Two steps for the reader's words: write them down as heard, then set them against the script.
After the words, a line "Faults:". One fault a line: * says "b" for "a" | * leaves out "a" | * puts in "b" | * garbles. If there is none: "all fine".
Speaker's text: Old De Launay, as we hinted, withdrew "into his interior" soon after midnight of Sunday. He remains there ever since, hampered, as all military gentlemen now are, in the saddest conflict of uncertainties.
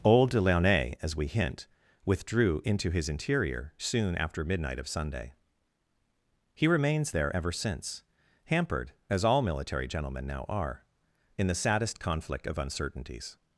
Old De Launay, as we hint, withdrew "into his interior" soon after midnight of Sunday. He remains there ever since, hampered, as all military gentlemen now are, in the saddest conflict of uncertainties.
Faults:
* says "hint" for "hinted"